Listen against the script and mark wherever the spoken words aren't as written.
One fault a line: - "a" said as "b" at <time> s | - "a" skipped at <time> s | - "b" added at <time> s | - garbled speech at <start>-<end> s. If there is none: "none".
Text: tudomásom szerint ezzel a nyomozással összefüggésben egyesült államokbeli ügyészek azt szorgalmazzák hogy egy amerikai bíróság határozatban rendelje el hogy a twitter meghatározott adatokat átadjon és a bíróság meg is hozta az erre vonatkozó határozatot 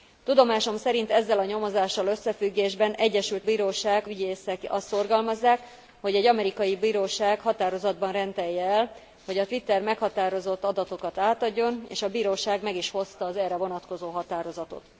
- "államokbeli" said as "bíróság" at 3.4 s